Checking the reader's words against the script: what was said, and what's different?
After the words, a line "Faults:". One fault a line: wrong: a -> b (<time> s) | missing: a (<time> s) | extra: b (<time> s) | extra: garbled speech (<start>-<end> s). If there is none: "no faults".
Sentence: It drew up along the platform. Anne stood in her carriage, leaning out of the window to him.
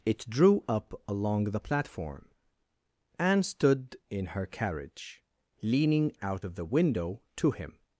It drew up along the platform. Anne stood in her carriage, leaning out of the window to him.
Faults:
no faults